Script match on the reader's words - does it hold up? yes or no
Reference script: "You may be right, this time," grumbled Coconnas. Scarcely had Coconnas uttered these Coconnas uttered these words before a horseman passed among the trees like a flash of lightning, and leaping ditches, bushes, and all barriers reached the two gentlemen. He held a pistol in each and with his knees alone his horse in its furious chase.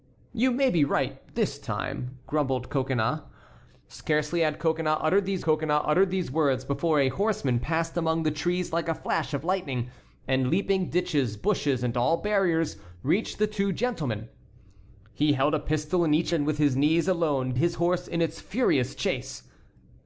yes